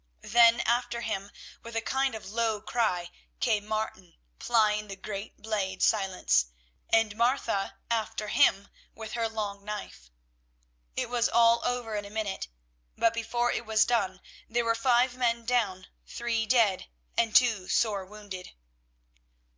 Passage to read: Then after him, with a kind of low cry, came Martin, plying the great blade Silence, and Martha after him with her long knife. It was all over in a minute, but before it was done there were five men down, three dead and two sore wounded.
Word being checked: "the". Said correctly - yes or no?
yes